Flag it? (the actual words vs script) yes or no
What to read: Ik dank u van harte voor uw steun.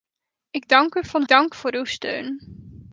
yes